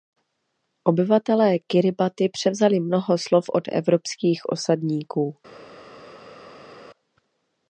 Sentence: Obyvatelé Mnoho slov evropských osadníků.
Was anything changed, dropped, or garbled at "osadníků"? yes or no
no